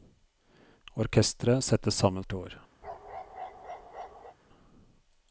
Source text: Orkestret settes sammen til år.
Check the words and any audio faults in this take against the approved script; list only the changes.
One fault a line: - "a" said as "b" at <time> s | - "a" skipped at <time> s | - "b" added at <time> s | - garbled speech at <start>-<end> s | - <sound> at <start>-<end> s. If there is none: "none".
- bark at 2.8-4.4 s